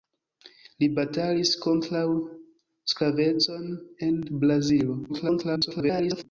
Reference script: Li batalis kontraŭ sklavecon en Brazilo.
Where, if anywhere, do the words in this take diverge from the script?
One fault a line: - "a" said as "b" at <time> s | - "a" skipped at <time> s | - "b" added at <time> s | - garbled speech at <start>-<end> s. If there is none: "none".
- garbled speech at 5.1-6.2 s